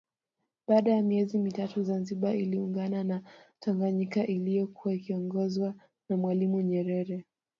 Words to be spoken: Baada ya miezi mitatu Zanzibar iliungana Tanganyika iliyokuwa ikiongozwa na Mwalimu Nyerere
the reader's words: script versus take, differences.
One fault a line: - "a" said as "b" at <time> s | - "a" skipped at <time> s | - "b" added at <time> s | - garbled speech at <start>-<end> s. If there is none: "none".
- "na" added at 3.0 s